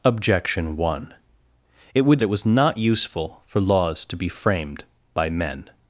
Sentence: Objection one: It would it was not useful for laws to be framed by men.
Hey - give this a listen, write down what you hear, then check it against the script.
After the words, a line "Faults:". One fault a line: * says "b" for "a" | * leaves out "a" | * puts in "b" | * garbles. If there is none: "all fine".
Objection one: It would it was not useful for laws to be framed by men.
Faults:
all fine